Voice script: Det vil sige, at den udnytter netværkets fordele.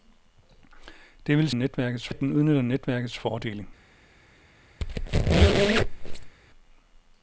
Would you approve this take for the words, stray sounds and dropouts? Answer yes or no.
no